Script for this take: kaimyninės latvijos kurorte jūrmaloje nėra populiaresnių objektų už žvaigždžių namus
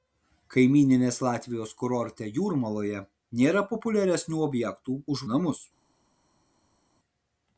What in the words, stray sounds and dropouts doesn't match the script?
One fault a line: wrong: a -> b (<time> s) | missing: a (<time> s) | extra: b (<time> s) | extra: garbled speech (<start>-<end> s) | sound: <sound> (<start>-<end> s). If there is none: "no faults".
missing: žvaigždžių (5.2 s)